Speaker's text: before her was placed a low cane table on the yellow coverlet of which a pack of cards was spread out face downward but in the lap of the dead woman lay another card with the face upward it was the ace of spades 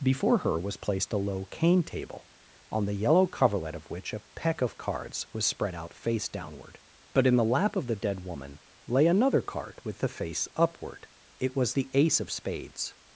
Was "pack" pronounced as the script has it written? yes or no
no